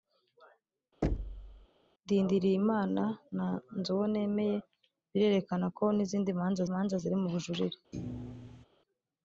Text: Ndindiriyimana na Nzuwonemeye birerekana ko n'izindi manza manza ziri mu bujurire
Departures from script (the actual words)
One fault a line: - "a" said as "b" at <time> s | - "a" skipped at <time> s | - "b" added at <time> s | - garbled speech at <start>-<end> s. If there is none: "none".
none